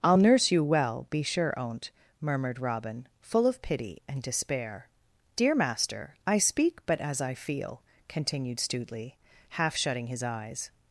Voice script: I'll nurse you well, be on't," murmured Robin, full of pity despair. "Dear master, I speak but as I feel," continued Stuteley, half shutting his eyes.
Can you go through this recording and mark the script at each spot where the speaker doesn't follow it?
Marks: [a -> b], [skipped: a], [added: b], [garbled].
I'll nurse you well, be [added: sure] on't," murmured Robin, full of pity [added: and] despair. "Dear master, I speak but as I feel," continued Stuteley, half shutting his eyes.